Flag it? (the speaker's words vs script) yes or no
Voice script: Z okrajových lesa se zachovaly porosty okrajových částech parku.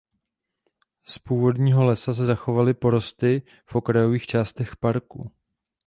yes